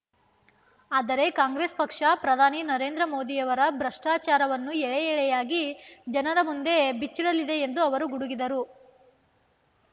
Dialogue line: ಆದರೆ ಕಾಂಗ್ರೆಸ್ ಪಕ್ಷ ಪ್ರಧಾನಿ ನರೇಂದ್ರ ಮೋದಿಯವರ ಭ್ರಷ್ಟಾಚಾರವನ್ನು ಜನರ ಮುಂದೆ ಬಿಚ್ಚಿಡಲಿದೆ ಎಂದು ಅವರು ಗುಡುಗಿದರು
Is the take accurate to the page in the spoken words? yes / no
no